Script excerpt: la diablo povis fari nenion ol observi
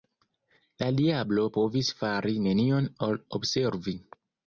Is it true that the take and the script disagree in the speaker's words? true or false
false